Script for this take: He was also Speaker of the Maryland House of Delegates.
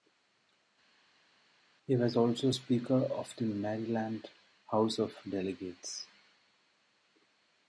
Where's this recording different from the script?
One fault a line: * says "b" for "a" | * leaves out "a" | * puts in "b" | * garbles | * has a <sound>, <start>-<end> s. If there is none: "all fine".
all fine